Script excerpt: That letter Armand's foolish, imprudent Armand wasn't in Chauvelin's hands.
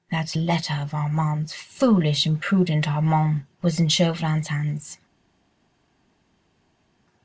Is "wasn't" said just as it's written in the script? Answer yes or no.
no